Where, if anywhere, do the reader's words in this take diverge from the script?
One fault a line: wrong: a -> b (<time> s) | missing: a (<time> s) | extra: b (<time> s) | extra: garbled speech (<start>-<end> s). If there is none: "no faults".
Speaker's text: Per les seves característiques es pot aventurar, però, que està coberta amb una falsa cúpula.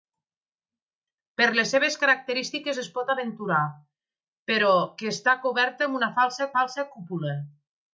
extra: falsa (6.6 s)